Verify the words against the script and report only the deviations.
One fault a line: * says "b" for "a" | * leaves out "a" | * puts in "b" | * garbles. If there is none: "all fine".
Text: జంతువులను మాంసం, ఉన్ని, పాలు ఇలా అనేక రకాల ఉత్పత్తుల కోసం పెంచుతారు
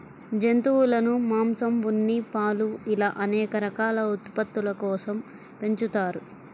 all fine